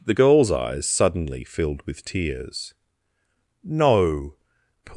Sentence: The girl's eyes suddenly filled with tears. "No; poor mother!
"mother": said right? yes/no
no